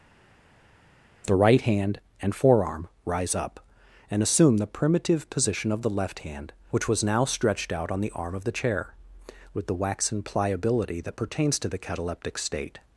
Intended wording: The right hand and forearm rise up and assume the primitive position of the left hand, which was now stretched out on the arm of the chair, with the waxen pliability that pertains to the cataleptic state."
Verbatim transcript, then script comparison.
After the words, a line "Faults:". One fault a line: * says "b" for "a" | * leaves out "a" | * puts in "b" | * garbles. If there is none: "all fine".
The right hand and forearm rise up and assume the primitive position of the left hand, which was now stretched out on the arm of the chair, with the waxen pliability that pertains to the cataleptic state."
Faults:
all fine